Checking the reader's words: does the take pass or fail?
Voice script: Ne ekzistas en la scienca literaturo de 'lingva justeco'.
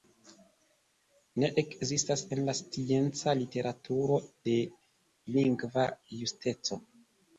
pass